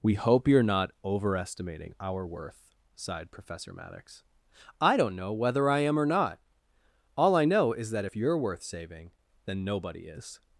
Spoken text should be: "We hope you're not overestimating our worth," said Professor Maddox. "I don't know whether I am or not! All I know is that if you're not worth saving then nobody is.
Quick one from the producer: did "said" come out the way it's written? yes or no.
no